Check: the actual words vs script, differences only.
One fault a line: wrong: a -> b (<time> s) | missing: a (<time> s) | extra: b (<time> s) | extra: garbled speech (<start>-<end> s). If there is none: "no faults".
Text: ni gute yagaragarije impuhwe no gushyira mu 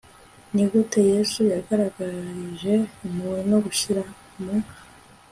extra: yesu (1.1 s)